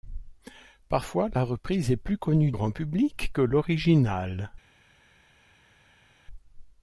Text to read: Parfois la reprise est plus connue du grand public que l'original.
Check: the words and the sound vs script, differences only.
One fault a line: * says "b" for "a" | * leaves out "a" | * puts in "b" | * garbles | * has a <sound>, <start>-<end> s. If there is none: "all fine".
* leaves out "du"